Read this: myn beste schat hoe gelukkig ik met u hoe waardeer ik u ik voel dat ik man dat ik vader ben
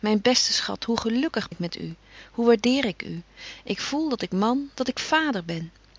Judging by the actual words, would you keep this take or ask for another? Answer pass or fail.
pass